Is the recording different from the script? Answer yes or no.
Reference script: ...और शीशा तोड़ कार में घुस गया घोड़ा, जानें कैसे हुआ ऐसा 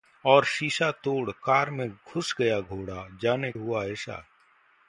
yes